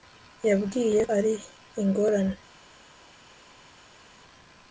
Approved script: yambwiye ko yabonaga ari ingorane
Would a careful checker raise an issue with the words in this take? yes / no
yes